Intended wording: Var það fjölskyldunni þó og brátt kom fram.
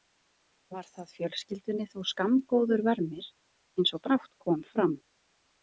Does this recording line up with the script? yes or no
no